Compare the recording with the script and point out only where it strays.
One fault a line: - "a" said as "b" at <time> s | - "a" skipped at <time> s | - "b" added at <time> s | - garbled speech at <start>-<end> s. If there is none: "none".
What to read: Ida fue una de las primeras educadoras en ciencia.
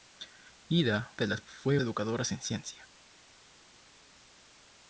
- "fue una" skipped at 1.1 s
- "primeras" said as "fue" at 1.4 s